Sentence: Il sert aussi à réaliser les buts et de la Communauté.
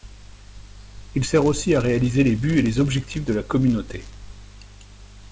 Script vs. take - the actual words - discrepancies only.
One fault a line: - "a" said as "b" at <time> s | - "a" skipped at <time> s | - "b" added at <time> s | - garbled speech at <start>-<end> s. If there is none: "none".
- "les objectifs" added at 2.6 s